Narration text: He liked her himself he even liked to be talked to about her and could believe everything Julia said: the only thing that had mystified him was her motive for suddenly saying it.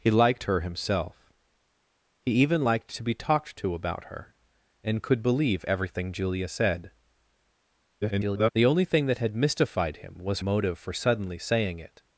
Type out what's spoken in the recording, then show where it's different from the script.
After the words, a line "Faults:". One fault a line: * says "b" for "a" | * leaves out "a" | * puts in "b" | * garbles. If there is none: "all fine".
He liked her himself he even liked to be talked to about her and could believe everything Julia said: [garbled] the only thing that had mystified him was motive for suddenly saying it.
Faults:
* garbles
* leaves out "her"